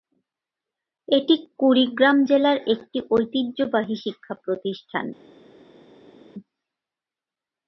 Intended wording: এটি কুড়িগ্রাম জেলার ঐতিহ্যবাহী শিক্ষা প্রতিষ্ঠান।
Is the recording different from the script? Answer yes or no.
yes